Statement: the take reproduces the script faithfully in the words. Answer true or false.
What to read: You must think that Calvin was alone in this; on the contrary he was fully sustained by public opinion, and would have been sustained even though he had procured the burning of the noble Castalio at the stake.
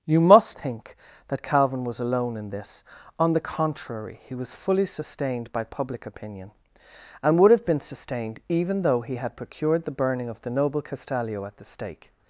true